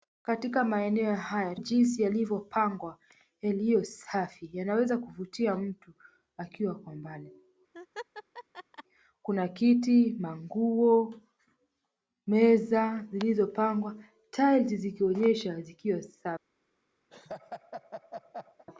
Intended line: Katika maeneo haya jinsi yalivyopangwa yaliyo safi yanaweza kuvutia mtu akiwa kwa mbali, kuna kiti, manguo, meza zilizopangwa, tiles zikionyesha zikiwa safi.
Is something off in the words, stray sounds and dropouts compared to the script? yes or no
yes